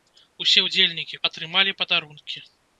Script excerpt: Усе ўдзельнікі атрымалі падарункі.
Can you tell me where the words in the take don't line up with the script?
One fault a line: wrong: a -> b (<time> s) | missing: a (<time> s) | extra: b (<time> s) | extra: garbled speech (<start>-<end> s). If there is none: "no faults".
no faults